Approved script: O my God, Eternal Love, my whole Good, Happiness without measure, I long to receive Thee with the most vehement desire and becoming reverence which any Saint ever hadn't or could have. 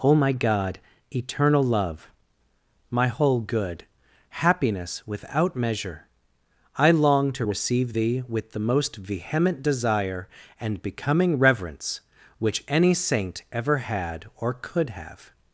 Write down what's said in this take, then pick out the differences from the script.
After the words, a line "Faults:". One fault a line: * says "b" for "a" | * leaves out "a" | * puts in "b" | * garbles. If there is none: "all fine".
O my God, Eternal Love, my whole Good, Happiness without measure, I long to receive Thee with the most vehement desire and becoming reverence which any Saint ever had or could have.
Faults:
* says "had" for "hadn't"